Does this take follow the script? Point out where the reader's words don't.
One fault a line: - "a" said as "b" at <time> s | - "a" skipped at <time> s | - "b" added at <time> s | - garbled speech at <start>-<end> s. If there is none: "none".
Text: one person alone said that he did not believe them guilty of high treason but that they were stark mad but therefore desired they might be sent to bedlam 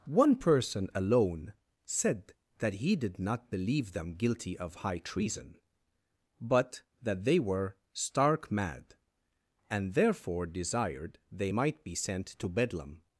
- "but" said as "and" at 9.7 s